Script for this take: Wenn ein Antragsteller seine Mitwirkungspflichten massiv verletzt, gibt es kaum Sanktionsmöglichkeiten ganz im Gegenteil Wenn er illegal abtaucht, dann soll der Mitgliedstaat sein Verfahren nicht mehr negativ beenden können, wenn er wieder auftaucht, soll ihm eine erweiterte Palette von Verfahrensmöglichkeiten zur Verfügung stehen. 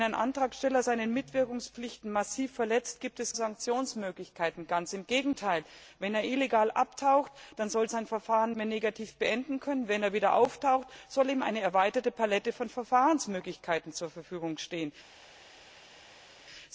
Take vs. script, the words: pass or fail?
fail